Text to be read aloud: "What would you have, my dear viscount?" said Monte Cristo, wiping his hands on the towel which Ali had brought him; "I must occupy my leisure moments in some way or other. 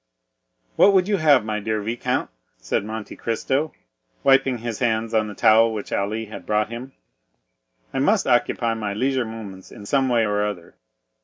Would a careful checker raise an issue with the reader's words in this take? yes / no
no